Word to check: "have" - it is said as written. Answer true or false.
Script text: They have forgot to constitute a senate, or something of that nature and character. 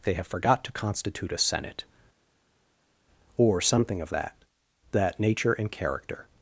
true